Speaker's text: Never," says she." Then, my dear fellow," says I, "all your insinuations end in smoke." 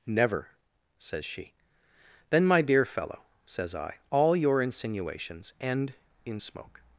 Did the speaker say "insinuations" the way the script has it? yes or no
yes